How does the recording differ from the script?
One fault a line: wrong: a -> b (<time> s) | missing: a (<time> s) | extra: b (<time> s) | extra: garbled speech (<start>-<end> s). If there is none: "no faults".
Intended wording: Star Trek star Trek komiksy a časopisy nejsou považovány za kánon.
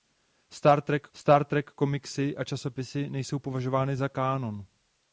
no faults